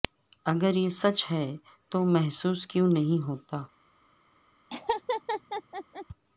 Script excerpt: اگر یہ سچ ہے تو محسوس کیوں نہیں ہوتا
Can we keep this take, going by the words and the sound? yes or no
no